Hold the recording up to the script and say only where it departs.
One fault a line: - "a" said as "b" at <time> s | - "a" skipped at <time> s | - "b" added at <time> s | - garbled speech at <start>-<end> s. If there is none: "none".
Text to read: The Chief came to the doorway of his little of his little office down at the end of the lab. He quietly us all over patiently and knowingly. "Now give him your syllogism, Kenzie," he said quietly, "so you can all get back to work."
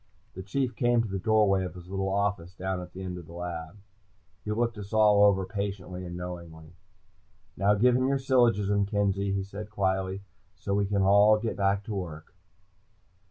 - "of his little" skipped at 2.1 s
- "quietly" said as "looked" at 4.5 s
- "you" said as "we" at 10.7 s